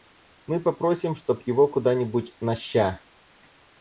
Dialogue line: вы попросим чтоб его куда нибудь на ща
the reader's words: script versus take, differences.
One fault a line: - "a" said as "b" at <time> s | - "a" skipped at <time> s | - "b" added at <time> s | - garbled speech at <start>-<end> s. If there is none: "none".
- "вы" said as "мы" at 0.5 s